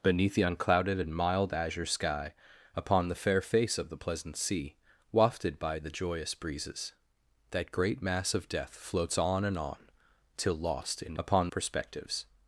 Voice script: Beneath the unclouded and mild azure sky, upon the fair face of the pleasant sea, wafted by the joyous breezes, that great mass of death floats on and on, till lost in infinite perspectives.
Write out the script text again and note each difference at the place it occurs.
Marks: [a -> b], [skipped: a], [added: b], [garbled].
Beneath the unclouded and mild azure sky, upon the fair face of the pleasant sea, wafted by the joyous breezes, that great mass of death floats on and on, till lost in [infinite -> upon] perspectives.